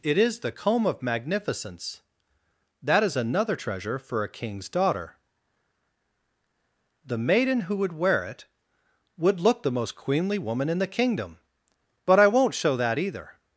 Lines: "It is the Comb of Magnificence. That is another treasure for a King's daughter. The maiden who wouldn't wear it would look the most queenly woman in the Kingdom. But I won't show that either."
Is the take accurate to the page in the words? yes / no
no